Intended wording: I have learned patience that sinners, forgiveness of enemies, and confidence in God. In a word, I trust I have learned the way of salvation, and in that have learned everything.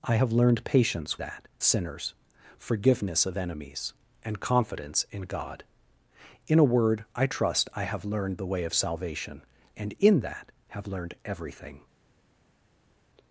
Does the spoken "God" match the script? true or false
true